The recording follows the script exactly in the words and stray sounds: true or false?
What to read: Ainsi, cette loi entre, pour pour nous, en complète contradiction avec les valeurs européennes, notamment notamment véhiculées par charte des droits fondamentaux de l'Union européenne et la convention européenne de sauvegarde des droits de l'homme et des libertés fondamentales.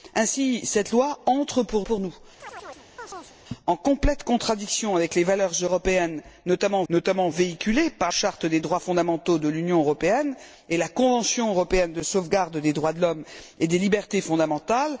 false